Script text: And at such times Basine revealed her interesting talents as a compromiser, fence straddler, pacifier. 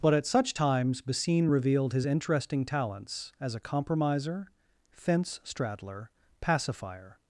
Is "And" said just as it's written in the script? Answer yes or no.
no